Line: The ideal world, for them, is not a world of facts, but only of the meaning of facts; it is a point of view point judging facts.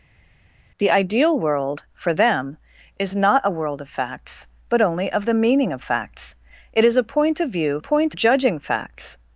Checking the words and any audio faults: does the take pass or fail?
pass